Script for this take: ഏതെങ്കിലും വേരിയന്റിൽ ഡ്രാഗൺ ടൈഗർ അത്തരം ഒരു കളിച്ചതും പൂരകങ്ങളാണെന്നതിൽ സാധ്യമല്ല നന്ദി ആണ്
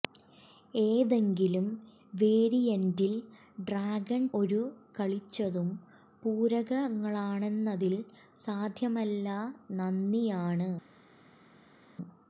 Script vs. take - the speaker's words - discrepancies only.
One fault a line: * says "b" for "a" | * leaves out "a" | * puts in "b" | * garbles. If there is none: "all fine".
* leaves out "ടൈഗർ അത്തരം"